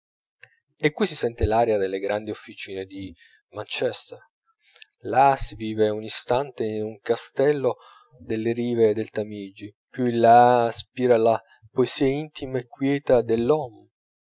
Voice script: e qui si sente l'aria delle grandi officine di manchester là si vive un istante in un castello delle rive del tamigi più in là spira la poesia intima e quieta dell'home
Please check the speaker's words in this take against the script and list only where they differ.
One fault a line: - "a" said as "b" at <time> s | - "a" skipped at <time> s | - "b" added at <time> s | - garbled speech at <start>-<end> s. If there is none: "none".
none